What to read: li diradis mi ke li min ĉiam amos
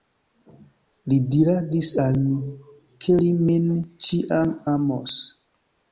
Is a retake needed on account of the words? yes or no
yes